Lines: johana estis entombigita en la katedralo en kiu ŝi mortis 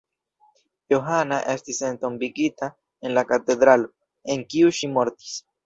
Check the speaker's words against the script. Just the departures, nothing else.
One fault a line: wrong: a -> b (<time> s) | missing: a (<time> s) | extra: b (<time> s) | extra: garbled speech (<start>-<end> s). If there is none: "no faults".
no faults